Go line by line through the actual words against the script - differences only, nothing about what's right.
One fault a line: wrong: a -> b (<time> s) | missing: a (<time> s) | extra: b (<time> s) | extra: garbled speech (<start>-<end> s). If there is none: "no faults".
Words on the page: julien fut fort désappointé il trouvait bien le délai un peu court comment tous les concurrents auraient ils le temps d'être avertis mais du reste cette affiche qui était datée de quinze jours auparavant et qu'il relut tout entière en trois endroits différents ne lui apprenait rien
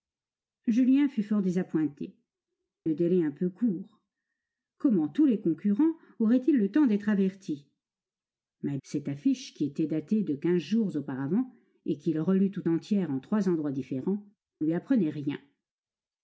missing: il trouvait bien (2.1 s)
missing: du reste (8.8 s)
missing: ne (14.2 s)